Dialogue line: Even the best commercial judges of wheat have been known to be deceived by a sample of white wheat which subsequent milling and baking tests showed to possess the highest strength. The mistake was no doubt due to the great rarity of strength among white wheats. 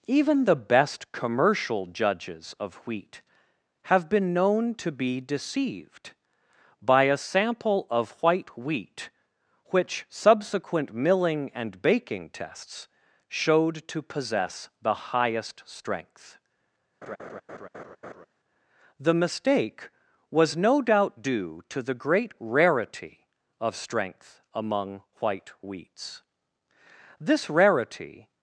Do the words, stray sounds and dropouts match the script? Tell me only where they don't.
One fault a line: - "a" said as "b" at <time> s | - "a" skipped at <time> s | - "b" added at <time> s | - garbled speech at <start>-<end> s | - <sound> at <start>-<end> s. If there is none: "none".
- laugh at 17.0-18.3 s
- "This rarity" added at 27.2 s